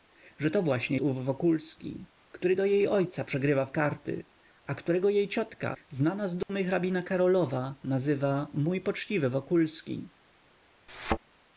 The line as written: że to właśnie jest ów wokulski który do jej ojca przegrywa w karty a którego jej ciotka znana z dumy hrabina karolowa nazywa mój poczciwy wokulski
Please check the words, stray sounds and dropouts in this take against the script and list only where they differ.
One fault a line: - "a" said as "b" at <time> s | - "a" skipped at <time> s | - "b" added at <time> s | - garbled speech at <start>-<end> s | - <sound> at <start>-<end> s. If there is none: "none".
- "jest" skipped at 1.0 s
- dropout at 6.4-6.5 s
- thud at 10.9-11.2 s